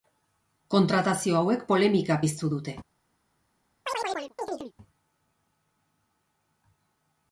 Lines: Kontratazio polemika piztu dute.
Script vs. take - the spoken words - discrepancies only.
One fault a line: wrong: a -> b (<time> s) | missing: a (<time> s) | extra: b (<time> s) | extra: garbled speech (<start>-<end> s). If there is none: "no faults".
extra: hauek (1.4 s)